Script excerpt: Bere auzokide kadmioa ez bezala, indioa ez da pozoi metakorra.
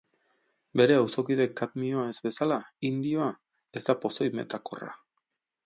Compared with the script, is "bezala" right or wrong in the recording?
right